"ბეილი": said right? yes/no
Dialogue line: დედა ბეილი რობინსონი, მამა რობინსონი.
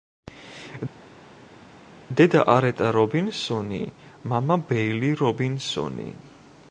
no